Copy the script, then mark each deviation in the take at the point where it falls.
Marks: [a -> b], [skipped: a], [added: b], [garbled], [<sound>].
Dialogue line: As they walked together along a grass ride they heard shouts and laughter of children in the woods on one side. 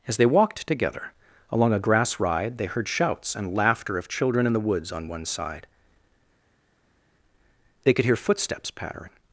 As they walked together along a grass ride they heard shouts and laughter of children in the woods on one side. [added: They could hear footsteps pattering]